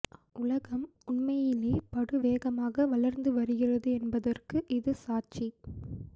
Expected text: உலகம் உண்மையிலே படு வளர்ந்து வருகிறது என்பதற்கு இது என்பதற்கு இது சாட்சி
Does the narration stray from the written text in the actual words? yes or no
yes